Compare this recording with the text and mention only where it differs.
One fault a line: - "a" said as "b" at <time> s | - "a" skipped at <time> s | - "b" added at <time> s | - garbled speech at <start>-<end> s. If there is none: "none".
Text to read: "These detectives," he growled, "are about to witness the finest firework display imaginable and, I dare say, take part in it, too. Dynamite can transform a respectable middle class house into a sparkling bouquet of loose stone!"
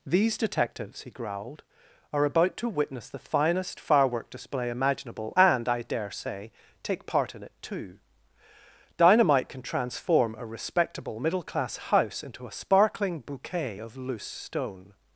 none